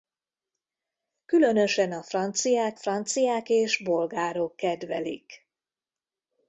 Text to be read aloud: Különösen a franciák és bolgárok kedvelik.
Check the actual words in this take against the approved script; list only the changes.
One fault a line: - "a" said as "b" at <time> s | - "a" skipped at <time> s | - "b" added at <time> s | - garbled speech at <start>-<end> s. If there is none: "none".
- "franciák" added at 2.8 s